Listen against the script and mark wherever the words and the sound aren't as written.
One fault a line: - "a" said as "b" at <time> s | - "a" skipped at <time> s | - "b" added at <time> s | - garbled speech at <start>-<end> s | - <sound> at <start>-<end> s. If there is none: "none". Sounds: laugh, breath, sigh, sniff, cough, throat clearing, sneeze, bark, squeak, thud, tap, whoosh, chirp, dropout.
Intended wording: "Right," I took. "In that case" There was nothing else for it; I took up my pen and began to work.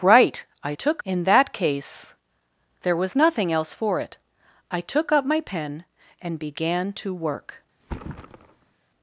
- thud at 7.8-8.7 s